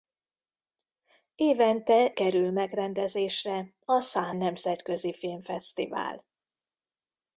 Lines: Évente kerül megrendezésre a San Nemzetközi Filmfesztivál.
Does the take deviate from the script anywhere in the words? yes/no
no